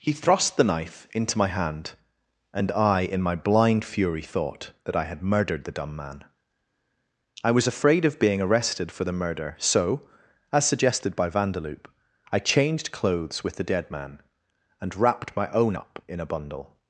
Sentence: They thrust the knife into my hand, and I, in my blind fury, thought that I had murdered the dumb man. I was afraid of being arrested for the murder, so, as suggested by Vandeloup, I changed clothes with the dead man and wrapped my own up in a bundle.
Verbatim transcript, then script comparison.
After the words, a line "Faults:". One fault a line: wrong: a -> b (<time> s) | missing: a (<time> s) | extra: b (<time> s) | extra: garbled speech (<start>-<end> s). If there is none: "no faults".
He thrust the knife into my hand, and I, in my blind fury, thought that I had murdered the dumb man. I was afraid of being arrested for the murder, so, as suggested by Vandeloup, I changed clothes with the dead man and wrapped my own up in a bundle.
Faults:
wrong: They -> He (0.0 s)